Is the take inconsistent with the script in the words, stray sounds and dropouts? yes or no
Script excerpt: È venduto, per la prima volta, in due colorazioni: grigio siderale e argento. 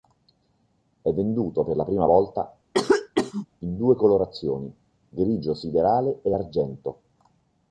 yes